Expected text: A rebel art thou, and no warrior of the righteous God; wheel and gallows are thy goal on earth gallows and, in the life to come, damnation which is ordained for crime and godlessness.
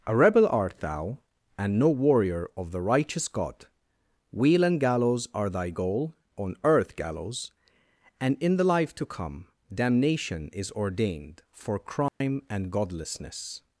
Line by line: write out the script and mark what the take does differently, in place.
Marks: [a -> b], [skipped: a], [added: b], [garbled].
A rebel art thou, and no warrior of the righteous God; wheel and gallows are thy goal on earth gallows and, in the life to come, damnation [skipped: which] is ordained for crime and godlessness.